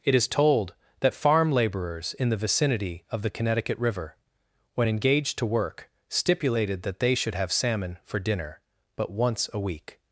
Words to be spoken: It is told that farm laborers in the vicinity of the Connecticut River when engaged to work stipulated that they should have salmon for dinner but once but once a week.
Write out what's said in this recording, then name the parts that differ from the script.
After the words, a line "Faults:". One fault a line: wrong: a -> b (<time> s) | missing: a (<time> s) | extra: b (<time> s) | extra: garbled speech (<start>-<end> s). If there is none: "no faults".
It is told that farm laborers in the vicinity of the Connecticut River when engaged to work stipulated that they should have salmon for dinner but once a week.
Faults:
missing: but once (9.5 s)